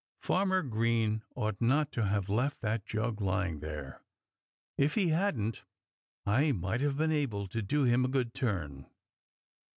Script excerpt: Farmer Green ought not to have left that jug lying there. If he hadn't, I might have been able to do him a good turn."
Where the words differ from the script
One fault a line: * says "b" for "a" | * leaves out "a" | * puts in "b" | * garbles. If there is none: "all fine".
all fine